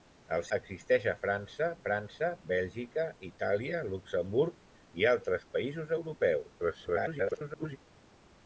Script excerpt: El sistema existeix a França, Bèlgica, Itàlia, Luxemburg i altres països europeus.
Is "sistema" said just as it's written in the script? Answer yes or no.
no